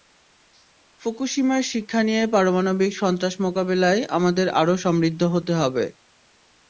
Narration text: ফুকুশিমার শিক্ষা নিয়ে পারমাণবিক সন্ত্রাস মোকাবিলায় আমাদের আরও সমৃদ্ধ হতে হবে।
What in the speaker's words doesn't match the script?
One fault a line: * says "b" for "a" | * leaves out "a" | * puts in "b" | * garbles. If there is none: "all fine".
all fine